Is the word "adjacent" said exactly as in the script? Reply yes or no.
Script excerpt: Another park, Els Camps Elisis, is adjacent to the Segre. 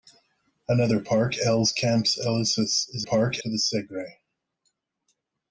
no